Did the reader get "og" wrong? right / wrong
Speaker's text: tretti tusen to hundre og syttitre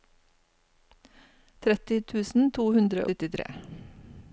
wrong